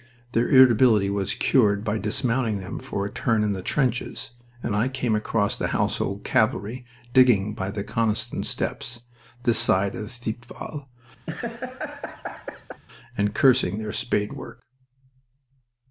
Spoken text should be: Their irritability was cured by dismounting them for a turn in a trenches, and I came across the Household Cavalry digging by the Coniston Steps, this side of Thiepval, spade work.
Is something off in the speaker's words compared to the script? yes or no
yes